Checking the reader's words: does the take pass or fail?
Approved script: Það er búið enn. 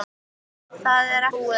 pass